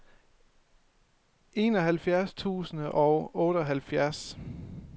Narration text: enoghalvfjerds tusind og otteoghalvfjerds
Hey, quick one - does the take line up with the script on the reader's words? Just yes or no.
yes